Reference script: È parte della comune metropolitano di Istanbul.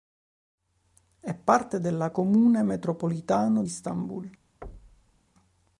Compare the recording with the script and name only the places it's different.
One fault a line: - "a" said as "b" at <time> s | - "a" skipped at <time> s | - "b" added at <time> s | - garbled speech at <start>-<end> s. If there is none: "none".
- "di" skipped at 3.6 s